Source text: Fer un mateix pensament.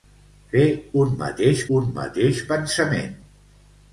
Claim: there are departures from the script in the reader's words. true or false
true